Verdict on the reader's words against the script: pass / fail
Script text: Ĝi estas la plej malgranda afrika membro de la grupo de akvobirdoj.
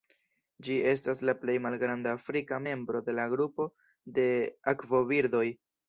pass